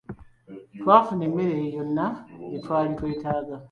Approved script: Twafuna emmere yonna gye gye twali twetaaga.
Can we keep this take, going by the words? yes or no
no